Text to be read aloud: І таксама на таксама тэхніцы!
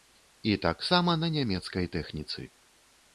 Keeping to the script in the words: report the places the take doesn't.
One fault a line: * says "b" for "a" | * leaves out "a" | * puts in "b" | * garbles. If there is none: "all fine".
* says "нямецкай" for "таксама"